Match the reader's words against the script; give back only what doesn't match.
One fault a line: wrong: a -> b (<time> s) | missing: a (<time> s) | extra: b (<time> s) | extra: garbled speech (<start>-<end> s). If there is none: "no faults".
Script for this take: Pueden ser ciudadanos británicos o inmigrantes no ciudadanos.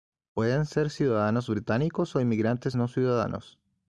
no faults